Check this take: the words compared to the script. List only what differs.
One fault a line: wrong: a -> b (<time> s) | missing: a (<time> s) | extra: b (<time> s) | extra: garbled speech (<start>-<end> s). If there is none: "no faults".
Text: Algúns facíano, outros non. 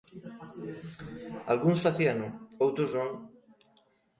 no faults